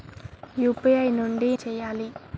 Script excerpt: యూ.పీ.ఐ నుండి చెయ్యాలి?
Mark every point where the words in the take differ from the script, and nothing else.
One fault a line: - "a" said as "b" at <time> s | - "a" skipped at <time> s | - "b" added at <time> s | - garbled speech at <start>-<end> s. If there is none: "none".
none